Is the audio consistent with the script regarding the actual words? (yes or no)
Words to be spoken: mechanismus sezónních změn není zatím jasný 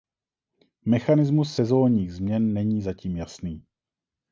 yes